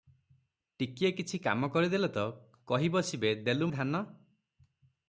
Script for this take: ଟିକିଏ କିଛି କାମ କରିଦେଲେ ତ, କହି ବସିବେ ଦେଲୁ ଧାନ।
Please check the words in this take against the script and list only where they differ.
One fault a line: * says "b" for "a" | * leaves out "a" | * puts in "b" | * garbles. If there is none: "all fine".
all fine